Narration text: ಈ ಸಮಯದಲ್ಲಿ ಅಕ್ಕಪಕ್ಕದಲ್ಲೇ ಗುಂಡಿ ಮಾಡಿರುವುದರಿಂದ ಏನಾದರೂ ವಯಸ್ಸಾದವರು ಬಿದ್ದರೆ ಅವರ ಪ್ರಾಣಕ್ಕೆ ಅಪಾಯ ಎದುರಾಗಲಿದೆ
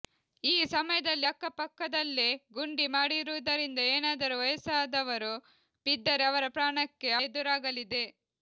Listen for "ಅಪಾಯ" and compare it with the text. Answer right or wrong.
wrong